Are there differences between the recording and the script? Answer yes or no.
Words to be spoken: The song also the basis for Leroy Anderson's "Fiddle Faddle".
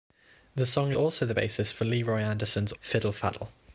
no